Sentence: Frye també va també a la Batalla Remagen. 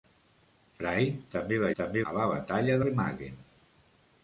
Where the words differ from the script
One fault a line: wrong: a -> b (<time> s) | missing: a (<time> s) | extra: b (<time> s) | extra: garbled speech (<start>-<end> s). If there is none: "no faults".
no faults